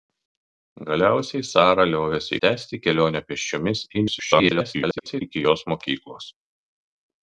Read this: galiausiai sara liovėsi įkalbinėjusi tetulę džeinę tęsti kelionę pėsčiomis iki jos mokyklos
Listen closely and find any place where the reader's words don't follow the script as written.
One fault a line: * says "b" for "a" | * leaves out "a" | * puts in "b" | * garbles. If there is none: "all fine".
* leaves out "įkalbinėjusi tetulę džeinę"
* garbles